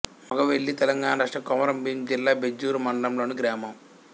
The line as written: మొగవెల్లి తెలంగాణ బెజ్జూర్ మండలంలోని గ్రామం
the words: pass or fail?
fail